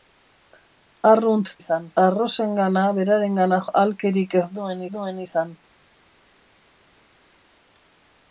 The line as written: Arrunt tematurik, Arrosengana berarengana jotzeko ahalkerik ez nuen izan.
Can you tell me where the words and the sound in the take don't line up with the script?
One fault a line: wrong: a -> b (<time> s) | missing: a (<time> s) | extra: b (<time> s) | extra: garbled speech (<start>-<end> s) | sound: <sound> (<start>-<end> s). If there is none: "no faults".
wrong: tematurik -> izan (1.6 s)
missing: jotzeko (3.6 s)
extra: nuen (4.9 s)